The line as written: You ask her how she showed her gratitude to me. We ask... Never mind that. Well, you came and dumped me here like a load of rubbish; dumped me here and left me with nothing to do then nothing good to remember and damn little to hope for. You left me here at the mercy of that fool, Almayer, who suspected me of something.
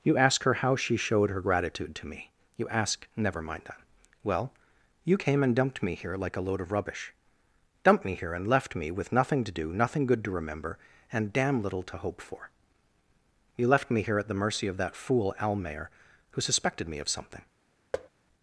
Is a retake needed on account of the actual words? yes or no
yes